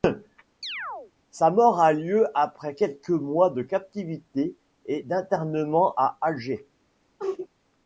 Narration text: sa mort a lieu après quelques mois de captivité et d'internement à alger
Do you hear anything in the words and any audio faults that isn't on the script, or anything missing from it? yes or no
yes